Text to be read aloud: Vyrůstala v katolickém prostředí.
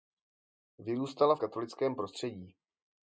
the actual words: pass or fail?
pass